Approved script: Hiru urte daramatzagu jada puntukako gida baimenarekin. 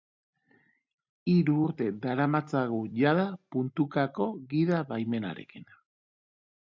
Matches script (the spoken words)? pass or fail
pass